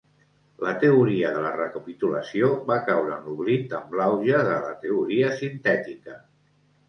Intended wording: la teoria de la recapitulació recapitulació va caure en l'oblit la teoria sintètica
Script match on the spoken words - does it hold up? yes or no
no